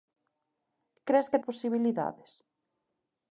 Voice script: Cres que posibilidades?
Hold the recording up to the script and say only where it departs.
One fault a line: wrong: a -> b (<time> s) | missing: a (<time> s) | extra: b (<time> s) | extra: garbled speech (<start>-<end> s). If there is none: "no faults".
no faults